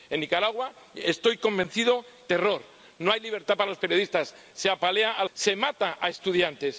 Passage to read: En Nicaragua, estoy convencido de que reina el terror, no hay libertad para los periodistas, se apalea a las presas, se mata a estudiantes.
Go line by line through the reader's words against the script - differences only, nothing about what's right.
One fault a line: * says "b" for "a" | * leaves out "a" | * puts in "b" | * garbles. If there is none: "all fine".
* leaves out "que reina el"
* leaves out "las presas"